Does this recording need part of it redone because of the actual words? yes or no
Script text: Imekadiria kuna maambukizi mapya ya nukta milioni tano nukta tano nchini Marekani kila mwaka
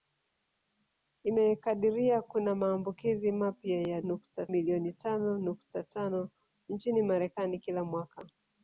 no